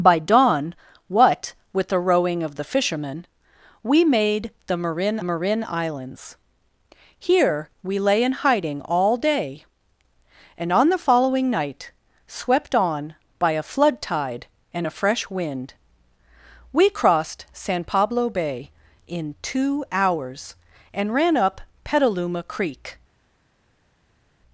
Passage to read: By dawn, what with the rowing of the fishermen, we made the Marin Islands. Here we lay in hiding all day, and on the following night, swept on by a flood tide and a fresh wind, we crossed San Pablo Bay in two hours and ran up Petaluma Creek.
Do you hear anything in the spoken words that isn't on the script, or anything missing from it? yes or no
yes